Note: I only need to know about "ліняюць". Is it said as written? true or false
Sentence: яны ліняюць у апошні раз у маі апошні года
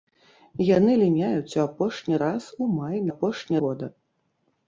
true